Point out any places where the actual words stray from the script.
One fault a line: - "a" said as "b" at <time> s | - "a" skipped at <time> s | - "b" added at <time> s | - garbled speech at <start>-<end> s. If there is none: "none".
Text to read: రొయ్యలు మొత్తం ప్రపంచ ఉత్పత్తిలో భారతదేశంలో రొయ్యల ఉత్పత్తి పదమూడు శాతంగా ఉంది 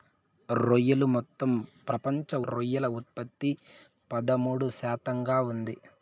- "ఉత్పత్తిలో భారతదేశంలో" skipped at 2.4 s